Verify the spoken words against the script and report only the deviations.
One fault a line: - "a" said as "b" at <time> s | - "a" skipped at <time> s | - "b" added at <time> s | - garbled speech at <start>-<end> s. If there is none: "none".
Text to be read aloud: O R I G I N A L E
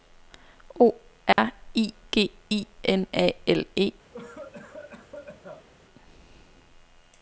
none